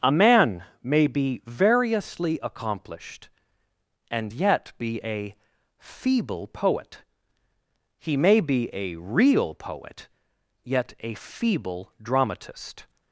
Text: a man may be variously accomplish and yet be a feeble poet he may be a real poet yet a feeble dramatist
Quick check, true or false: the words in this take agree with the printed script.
false